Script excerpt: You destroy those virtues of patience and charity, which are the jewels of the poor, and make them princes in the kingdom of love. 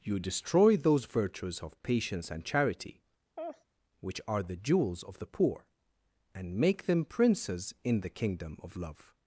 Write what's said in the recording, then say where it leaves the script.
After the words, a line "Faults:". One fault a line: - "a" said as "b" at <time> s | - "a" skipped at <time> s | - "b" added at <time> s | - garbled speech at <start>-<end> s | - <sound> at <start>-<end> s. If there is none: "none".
You destroy those virtues of patience and charity, which are the jewels of the poor, and make them princes in the kingdom of love.
Faults:
- laugh at 3.4-3.6 s